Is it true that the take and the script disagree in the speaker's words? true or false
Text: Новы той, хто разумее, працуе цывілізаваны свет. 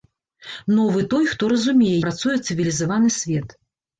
false